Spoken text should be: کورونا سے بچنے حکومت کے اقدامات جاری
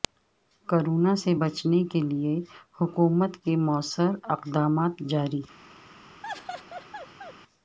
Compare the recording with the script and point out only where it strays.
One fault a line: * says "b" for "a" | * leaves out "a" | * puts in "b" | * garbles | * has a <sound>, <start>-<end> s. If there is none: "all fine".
* puts in "کیلئے"
* puts in "موثر"
* has a laugh, 6.2-7.3 s